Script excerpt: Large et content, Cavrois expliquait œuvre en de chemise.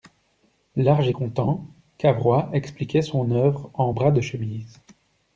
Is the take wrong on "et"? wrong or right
right